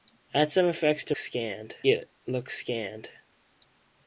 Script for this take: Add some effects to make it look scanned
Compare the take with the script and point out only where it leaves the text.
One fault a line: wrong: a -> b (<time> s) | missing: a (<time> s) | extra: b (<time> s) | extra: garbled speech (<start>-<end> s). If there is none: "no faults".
wrong: make -> scanned (1.1 s)